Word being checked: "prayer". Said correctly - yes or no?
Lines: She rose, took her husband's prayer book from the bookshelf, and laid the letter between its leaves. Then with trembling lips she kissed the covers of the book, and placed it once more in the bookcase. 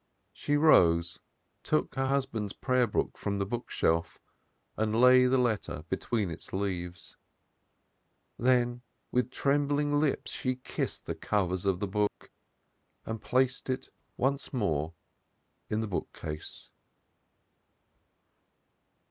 yes